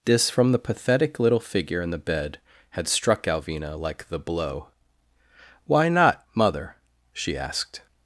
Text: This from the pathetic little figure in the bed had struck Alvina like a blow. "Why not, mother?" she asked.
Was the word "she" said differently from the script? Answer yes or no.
no